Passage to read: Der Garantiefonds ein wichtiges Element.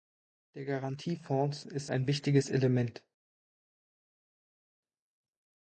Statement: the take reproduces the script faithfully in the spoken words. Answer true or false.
false